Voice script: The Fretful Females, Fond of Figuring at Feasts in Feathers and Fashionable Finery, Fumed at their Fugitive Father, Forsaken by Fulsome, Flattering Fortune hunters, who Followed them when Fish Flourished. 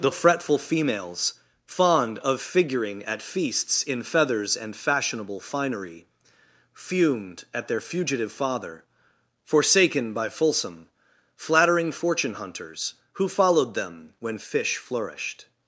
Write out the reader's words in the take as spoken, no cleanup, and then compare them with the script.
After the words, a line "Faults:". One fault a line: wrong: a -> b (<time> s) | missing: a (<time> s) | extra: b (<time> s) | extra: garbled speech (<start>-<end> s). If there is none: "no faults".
The Fretful Females, Fond of Figuring at Feasts in Feathers and Fashionable Finery, Fumed at their Fugitive Father, Forsaken by Fulsome, Flattering Fortune hunters, who Followed them when Fish Flourished.
Faults:
no faults